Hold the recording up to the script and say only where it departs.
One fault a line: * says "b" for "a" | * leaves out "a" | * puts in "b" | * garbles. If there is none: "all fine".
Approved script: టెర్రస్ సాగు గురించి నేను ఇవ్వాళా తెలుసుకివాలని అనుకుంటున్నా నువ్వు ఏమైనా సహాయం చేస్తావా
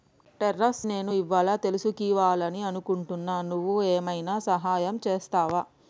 * leaves out "సాగు గురించి"